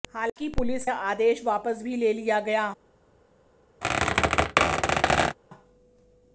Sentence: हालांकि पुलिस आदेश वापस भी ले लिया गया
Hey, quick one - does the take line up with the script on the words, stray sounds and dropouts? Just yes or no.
no